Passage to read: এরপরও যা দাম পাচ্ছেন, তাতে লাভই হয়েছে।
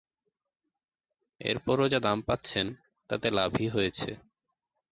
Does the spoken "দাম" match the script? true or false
true